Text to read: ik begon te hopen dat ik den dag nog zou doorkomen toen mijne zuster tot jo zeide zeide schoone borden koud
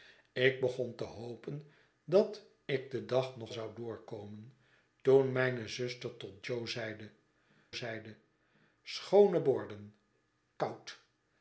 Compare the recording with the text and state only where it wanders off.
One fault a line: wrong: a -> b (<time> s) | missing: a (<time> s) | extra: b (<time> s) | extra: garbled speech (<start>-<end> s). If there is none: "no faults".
no faults